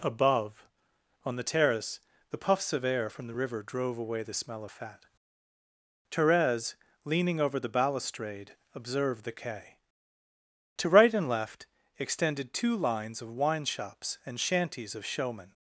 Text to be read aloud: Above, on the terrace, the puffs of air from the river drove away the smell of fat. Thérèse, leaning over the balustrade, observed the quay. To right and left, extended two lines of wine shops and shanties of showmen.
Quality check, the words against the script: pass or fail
pass